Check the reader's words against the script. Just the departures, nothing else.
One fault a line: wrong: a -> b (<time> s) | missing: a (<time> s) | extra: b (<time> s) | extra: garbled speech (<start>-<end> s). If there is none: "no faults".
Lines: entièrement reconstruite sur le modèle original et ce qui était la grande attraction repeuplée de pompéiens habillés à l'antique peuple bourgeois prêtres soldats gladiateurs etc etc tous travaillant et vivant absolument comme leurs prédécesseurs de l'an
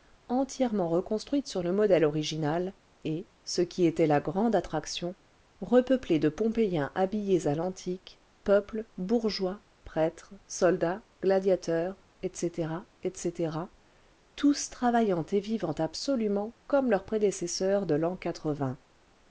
no faults